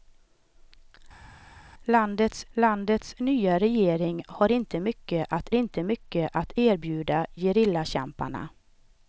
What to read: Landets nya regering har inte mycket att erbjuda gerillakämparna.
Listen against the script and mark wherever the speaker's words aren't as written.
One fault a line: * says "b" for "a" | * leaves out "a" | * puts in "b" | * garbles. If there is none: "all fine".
* puts in "landets"
* puts in "inte mycket att"